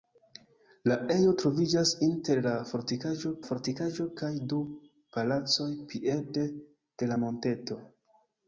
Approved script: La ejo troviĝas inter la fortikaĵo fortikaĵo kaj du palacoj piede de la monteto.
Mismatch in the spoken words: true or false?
false